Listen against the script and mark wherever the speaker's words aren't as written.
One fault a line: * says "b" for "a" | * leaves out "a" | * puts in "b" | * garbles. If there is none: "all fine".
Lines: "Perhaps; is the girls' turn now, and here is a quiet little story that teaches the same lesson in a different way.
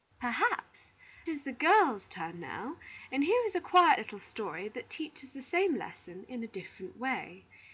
all fine